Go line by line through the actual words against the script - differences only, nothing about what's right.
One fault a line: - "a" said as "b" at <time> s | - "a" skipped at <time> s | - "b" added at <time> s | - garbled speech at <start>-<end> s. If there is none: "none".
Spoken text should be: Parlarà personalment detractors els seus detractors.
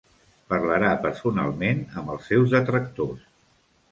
- "detractors" said as "amb" at 2.0 s